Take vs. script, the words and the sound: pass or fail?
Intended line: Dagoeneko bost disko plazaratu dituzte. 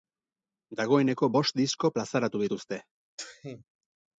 fail